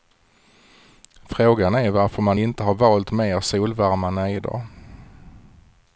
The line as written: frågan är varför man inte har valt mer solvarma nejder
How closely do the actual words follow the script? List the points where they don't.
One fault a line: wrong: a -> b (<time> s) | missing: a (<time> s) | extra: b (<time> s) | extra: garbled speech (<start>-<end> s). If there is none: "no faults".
no faults